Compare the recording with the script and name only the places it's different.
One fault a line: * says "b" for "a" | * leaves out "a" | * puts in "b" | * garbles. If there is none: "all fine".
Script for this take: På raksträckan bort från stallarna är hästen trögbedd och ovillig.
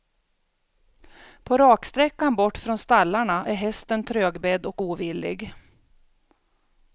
all fine